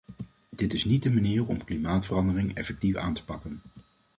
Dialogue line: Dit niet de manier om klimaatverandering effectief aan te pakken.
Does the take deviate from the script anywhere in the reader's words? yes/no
yes